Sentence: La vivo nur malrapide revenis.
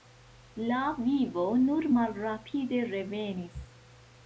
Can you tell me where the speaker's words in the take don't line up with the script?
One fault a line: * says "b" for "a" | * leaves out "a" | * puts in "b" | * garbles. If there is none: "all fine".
all fine